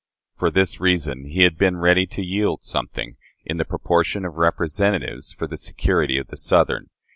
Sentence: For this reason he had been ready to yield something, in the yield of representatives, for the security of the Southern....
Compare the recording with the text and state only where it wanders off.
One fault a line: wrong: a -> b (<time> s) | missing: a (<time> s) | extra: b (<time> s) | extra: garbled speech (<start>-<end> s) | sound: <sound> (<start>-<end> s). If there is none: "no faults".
wrong: yield -> proportion (3.6 s)